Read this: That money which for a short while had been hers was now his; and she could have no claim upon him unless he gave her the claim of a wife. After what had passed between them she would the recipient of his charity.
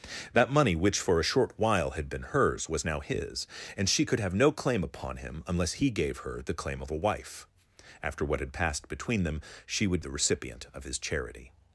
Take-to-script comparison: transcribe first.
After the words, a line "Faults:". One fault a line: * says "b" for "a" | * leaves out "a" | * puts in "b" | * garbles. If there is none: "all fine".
That money which for a short while had been hers was now his; and she could have no claim upon him unless he gave her the claim of a wife. After what had passed between them she would the recipient of his charity.
Faults:
all fine